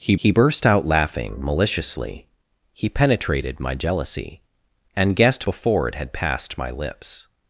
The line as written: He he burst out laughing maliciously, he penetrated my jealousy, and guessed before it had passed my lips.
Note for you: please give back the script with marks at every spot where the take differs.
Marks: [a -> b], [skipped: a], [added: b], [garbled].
He he burst out laughing maliciously, he penetrated my jealousy, and guessed before it had passed my lips.